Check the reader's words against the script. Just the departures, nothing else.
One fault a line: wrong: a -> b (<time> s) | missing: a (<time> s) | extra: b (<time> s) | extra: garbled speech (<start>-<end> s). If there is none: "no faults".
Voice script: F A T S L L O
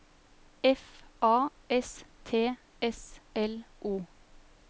extra: S (1.7 s)
missing: L (3.7 s)